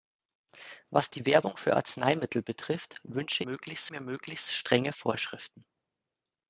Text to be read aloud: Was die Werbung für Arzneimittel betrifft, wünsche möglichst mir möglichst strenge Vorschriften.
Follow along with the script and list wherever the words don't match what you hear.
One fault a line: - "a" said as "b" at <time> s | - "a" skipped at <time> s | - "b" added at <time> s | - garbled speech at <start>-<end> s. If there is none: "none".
none